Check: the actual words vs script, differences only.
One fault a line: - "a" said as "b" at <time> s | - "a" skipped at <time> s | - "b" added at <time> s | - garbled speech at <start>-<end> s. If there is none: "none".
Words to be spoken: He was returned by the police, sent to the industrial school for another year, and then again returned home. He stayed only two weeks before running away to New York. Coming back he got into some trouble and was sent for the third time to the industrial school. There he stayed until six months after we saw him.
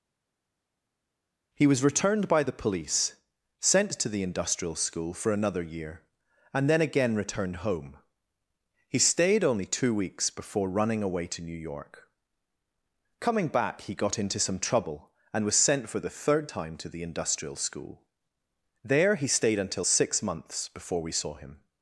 - "after" said as "before" at 20.7 s